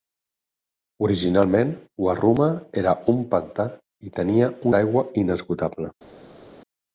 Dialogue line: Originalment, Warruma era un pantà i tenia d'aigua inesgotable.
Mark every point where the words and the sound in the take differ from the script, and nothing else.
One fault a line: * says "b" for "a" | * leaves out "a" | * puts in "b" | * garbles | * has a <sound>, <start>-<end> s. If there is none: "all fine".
all fine